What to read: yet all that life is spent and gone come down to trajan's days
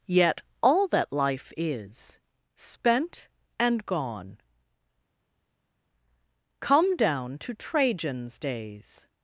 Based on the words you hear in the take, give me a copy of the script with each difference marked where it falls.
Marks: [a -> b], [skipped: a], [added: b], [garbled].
yet all that life is spent and gone come down to trajan's days